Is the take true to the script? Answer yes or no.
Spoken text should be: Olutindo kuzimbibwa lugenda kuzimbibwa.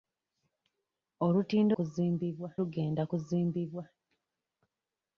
yes